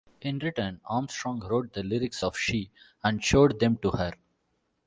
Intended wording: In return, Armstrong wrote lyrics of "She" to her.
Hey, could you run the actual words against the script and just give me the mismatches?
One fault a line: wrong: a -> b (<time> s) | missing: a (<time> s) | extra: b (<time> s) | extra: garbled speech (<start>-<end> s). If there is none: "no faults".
extra: the (1.7 s)
extra: and showed them (3.0 s)